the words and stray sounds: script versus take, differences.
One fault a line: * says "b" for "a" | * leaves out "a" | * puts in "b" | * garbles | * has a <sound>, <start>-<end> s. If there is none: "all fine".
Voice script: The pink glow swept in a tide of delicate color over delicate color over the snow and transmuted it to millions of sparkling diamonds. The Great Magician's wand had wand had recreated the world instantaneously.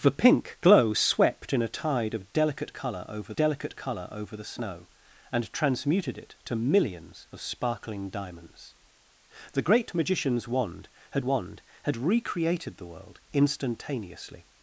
all fine